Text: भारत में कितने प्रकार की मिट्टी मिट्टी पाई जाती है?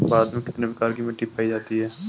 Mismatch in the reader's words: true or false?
true